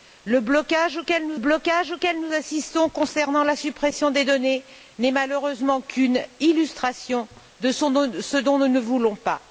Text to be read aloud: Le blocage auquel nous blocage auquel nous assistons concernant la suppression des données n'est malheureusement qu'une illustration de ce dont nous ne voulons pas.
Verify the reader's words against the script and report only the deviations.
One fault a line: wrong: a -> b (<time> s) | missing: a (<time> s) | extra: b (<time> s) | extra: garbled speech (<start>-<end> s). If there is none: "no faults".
no faults